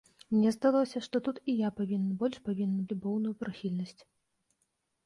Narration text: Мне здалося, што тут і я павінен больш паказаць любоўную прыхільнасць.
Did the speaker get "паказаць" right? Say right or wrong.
wrong